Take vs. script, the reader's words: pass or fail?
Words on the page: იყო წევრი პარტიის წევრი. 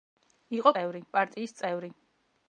pass